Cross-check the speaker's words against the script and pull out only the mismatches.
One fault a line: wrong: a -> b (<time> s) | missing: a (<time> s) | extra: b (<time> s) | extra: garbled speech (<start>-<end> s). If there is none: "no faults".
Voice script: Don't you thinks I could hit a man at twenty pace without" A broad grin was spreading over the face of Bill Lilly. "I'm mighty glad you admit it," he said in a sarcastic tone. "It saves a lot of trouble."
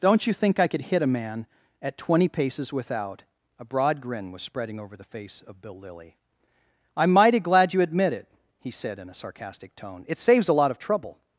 wrong: thinks -> think (0.3 s)
wrong: pace -> paces (2.3 s)